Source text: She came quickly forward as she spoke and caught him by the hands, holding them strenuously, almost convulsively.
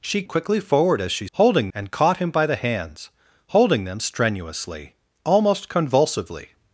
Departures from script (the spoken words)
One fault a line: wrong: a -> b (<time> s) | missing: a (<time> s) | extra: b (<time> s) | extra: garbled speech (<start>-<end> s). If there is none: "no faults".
missing: came (0.2 s)
wrong: spoke -> holding (1.3 s)